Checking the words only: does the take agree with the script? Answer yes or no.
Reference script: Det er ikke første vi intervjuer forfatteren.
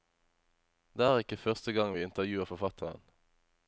no